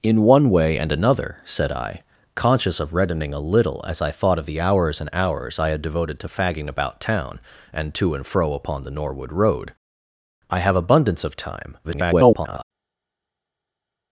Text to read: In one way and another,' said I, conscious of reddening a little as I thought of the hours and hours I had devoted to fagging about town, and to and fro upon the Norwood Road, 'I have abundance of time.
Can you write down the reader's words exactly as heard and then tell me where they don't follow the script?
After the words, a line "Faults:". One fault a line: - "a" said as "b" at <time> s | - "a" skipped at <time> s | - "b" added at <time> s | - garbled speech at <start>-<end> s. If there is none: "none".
In one way and another,' said I, conscious of reddening a little as I thought of the hours and hours I had devoted to fagging about town, and to and fro upon the Norwood Road, 'I have abundance of time. [garbled]
Faults:
- garbled speech at 11.8-12.6 s